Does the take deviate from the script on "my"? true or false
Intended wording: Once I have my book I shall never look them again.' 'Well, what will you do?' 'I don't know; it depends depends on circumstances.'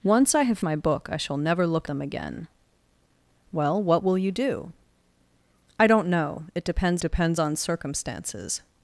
false